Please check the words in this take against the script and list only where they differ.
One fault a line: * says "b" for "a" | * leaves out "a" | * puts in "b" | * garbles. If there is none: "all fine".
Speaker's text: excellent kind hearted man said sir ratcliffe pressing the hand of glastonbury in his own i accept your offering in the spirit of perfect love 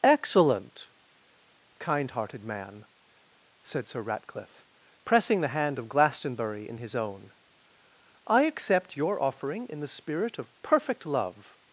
all fine